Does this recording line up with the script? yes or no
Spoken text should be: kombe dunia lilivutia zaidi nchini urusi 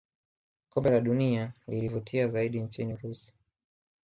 no